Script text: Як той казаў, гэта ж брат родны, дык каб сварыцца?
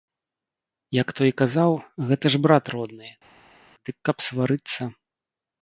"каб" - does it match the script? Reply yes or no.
yes